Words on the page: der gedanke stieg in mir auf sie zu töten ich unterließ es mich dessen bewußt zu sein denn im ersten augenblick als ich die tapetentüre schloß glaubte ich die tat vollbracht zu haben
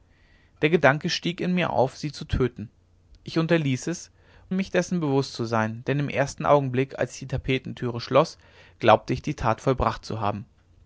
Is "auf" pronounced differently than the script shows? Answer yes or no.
no